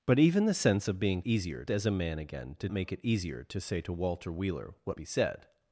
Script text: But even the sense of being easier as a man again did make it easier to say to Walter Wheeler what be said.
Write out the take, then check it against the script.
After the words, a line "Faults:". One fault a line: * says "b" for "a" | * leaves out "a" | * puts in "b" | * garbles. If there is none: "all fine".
But even the sense of being easier as a man again did make it easier to say to Walter Wheeler what be said.
Faults:
all fine